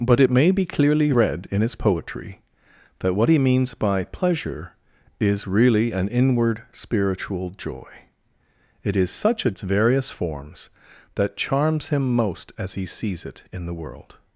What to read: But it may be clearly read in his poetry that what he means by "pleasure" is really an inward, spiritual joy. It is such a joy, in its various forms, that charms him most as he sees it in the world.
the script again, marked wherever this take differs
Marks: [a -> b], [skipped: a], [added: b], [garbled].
But it may be clearly read in his poetry that what he means by "pleasure" is really an inward, spiritual joy. It is such a [skipped: joy, in] its various forms, that charms him most as he sees it in the world.